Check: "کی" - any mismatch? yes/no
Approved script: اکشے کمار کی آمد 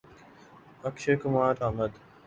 yes